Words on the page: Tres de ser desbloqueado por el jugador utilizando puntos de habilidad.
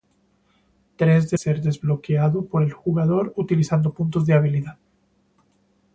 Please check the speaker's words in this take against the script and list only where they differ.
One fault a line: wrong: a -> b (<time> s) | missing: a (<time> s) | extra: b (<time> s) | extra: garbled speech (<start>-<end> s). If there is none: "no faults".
no faults